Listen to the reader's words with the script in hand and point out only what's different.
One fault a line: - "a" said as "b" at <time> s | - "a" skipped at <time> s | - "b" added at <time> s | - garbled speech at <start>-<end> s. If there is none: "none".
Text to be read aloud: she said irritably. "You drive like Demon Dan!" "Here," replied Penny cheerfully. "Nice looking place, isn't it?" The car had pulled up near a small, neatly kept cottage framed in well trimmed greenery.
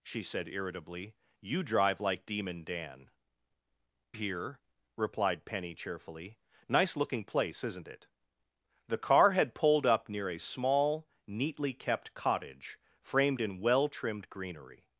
none